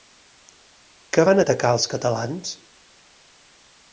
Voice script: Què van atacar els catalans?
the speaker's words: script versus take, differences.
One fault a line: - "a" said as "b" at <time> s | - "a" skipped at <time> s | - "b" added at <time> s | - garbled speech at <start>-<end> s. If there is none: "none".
none